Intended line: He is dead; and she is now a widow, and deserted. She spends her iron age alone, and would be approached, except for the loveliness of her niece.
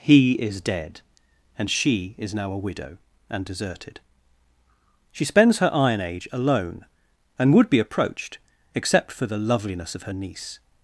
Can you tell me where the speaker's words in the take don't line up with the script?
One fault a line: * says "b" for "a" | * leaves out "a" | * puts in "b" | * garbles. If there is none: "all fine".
all fine